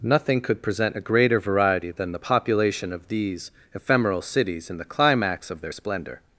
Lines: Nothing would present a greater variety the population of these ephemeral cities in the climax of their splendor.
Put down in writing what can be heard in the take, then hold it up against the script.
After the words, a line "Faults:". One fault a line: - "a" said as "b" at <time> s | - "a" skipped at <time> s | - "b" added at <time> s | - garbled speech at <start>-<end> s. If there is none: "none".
Nothing could present a greater variety than the population of these ephemeral cities in the climax of their splendor.
Faults:
- "would" said as "could" at 0.4 s
- "than" added at 1.9 s